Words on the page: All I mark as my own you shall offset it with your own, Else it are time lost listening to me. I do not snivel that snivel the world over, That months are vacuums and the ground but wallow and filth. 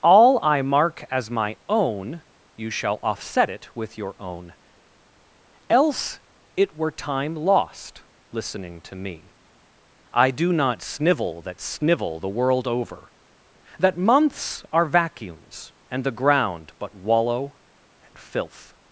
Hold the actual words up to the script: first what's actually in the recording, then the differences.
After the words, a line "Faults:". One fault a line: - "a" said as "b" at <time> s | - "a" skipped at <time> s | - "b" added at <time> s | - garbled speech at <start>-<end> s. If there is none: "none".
All I mark as my own you shall offset it with your own, Else it were time lost listening to me. I do not snivel that snivel the world over, That months are vacuums and the ground but wallow and filth.
Faults:
- "are" said as "were" at 6.7 s